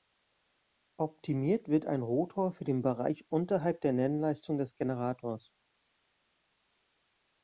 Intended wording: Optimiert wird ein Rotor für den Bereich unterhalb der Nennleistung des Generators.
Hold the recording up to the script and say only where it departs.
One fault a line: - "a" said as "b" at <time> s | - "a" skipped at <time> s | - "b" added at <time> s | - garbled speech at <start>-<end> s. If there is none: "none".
none